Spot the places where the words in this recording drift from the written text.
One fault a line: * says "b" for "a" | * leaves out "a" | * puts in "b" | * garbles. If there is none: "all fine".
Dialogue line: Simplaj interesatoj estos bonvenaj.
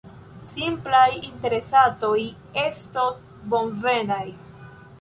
all fine